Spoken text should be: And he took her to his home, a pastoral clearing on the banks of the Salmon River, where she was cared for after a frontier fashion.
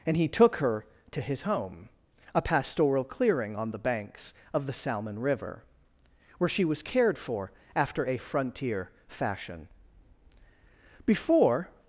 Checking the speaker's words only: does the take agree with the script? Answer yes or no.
no